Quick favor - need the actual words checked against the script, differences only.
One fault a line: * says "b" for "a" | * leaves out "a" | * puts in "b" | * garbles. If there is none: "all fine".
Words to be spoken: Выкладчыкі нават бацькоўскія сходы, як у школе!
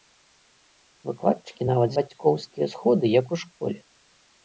all fine